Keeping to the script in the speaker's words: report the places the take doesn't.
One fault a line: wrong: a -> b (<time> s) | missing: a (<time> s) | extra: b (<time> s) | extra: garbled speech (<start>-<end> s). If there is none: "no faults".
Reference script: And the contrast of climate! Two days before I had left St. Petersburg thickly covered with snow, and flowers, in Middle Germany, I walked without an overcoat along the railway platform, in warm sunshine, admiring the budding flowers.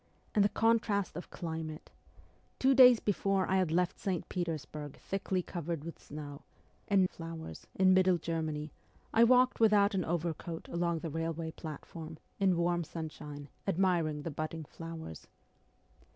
no faults